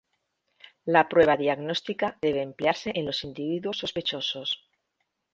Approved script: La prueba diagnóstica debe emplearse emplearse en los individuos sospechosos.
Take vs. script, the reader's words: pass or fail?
fail